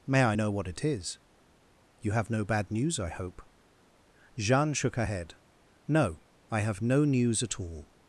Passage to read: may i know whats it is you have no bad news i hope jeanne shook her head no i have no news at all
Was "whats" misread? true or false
true